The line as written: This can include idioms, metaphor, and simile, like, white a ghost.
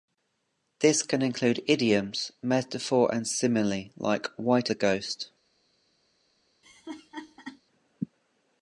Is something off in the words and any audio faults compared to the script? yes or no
yes